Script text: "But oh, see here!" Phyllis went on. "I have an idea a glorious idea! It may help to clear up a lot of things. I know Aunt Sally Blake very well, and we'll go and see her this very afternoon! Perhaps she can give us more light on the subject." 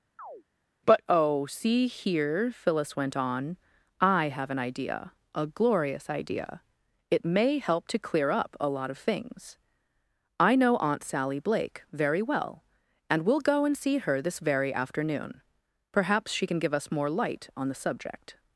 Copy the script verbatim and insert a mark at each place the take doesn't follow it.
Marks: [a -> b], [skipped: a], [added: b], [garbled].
"But oh, see here!" Phyllis went on. "I have an idea a glorious idea! It may help to clear up a lot of things. I know Aunt Sally Blake very well, and we'll go and see her this very afternoon! Perhaps she can give us more light on the subject."